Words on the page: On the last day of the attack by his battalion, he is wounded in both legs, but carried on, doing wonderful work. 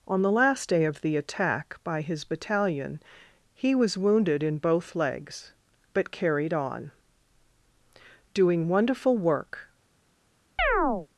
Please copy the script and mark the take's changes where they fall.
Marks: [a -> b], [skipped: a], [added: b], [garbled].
On the last day of the attack by his battalion, he [is -> was] wounded in both legs, but carried on, doing wonderful work.